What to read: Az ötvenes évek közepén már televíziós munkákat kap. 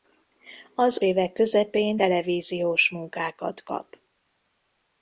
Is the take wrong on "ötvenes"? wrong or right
wrong